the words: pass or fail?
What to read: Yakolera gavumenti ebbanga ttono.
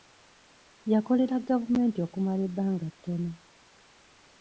fail